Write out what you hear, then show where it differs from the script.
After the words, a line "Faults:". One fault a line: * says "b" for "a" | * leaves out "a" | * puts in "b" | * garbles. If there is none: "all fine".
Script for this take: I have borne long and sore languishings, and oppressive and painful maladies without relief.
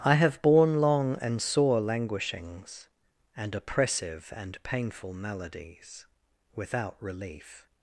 I have borne long and sore languishings, and oppressive and painful maladies without relief.
Faults:
all fine